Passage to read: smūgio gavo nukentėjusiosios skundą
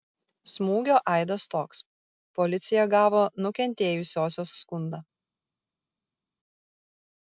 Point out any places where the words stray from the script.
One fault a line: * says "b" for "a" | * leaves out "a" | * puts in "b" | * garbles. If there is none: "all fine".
* puts in "aidas toks policija"